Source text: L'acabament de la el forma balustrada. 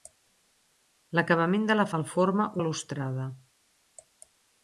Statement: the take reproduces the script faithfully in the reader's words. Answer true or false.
true